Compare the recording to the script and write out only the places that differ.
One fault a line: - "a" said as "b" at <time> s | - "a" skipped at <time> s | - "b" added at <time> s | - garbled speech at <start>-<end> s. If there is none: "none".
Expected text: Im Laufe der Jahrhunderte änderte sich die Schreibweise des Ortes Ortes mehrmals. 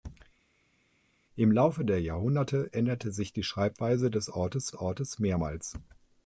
none